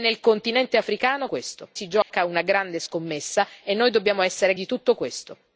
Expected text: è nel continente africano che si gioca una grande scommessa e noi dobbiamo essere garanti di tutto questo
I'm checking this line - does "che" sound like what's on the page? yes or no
no